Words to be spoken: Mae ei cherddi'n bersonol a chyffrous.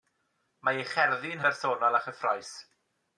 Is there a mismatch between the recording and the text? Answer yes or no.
no